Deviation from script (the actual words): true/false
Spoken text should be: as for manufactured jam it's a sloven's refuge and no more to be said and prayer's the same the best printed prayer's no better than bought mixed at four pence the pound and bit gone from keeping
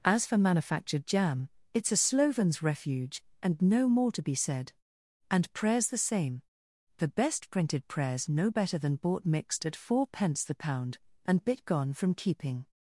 false